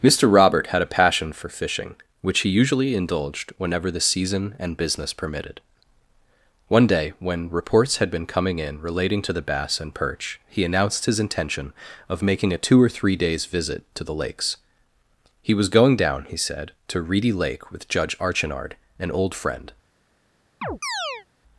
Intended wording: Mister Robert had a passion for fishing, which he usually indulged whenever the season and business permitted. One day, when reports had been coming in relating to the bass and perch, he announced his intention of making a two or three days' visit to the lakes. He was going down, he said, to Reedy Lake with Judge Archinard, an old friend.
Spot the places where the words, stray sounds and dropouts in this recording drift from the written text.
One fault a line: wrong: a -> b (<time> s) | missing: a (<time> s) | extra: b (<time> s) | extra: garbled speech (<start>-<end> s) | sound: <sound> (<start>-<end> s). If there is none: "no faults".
sound: chirp (20.6-21.3 s)